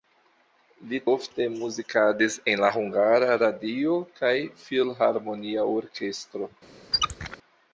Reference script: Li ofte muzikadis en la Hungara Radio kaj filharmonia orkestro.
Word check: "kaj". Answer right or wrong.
right